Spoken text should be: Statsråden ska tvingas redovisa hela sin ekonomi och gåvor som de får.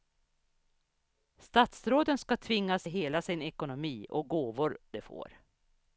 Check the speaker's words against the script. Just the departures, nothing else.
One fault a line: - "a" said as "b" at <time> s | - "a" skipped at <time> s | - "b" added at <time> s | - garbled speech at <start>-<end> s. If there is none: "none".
- "redovisa" skipped at 2.9 s
- "som" skipped at 4.8 s